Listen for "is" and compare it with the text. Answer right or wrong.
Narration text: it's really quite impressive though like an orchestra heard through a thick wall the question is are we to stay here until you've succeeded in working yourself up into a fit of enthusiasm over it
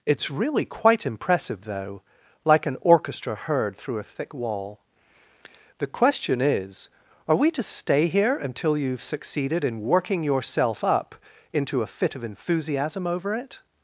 right